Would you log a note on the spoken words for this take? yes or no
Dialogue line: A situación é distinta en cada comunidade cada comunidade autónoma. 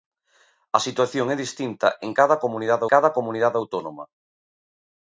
no